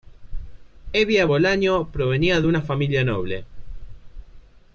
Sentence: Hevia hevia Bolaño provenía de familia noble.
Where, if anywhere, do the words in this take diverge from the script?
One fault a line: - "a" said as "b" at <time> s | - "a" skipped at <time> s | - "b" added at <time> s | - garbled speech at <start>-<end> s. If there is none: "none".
- "hevia" skipped at 1.3 s
- "una" added at 2.5 s